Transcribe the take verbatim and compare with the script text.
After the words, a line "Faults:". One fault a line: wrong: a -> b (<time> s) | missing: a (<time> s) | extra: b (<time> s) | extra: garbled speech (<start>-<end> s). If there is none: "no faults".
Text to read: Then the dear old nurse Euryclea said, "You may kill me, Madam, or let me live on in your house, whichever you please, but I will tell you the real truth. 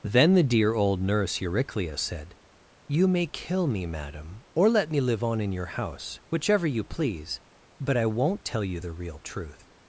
Then the dear old nurse Euryclea said, "You may kill me, Madam, or let me live on in your house, whichever you please, but I won't tell you the real truth.
Faults:
wrong: will -> won't (8.1 s)